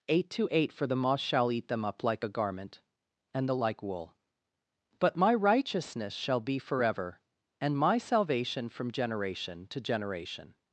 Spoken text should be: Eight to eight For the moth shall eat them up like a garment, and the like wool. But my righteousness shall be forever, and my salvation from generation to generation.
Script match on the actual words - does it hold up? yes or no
yes